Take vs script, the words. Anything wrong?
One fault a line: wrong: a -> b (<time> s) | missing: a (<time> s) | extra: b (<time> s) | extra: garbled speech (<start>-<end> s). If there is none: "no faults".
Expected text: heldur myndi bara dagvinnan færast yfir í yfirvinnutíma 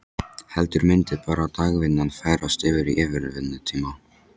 no faults